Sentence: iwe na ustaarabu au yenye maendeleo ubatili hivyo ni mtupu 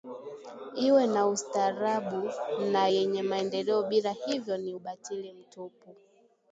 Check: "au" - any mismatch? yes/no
yes